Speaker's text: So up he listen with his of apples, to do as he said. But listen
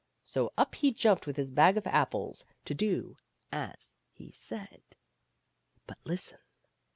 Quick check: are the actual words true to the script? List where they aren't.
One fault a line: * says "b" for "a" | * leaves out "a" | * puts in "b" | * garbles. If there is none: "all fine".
* says "jumped" for "listen"
* puts in "bag"